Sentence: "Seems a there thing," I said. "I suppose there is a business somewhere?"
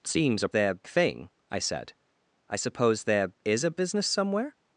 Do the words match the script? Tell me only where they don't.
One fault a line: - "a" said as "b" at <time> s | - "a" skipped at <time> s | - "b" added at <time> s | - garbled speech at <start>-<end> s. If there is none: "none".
none